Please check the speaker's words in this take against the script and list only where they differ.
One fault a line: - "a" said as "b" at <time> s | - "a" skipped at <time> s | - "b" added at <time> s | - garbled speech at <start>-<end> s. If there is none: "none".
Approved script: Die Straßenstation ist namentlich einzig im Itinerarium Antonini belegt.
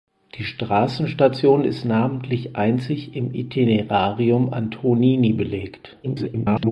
- garbled speech at 6.0-6.7 s